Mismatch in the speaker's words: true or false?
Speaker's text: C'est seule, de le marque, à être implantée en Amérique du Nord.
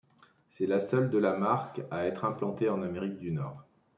true